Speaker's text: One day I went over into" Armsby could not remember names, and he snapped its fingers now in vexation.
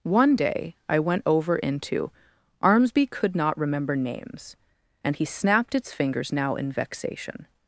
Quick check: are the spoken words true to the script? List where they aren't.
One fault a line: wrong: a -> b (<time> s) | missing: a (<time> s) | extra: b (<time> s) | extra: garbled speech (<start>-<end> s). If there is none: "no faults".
no faults